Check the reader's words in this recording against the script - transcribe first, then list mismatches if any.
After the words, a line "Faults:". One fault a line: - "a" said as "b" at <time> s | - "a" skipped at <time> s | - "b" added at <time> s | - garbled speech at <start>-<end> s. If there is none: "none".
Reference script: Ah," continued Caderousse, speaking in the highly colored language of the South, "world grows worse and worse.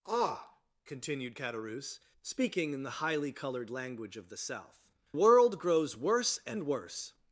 Ah," continued Caderousse, speaking in the highly colored language of the South, "world grows worse and worse.
Faults:
none